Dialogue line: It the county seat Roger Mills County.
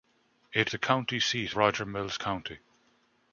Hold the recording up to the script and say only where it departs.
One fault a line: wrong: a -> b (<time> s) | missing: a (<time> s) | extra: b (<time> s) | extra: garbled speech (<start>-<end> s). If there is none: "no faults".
no faults